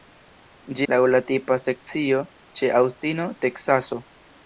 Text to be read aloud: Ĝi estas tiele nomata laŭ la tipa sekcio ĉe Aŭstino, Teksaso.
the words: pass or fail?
fail